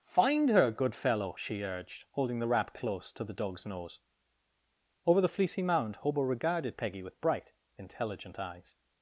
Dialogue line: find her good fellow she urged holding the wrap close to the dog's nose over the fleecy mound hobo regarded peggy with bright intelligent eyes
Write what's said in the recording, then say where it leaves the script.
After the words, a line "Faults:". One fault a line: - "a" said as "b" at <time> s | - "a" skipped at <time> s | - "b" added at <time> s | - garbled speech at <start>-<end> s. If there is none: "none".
find her good fellow she urged holding the wrap close to the dog's nose over the fleecy mound hobo regarded peggy with bright intelligent eyes
Faults:
none